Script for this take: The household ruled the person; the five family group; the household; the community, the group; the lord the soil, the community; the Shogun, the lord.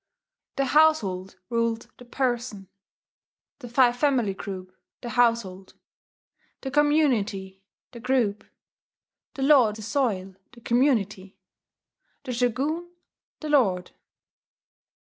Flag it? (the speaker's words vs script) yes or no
no